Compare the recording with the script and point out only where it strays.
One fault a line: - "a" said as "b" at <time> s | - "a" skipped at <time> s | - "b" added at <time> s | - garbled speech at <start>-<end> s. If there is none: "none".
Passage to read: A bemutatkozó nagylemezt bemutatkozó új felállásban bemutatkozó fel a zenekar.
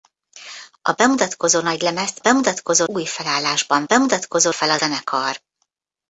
none